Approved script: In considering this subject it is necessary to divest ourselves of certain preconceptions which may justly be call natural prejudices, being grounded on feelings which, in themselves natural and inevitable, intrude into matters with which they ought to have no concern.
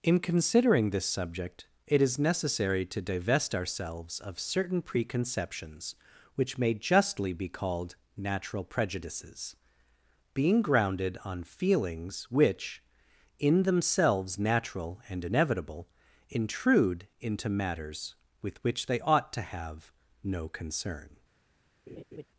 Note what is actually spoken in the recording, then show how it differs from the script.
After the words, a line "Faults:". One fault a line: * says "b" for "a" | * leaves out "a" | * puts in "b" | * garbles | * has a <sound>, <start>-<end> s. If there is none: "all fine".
In considering this subject it is necessary to divest ourselves of certain preconceptions which may justly be called natural prejudices, being grounded on feelings which, in themselves natural and inevitable, intrude into matters with which they ought to have no concern.
Faults:
* says "called" for "call"
* has a laugh, 21.9-22.3 s